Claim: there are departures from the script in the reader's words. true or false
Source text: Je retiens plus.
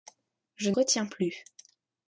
false